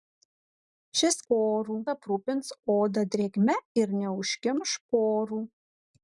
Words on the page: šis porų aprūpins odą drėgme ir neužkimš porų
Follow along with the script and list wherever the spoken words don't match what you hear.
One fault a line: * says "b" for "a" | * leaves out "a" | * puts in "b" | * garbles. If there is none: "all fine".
all fine